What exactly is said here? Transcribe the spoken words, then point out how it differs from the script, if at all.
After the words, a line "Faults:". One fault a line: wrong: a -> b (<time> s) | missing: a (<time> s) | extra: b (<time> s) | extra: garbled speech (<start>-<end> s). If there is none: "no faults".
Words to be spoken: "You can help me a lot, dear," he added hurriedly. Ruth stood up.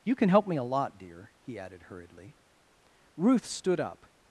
"You can help me a lot, dear," he added hurriedly. Ruth stood up.
Faults:
no faults